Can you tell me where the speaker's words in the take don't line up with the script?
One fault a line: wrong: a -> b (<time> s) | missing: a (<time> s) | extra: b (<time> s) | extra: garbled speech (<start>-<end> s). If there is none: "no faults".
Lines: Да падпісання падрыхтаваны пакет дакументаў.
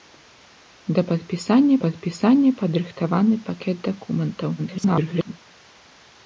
extra: падпісання (1.8 s)
extra: garbled speech (4.6-5.3 s)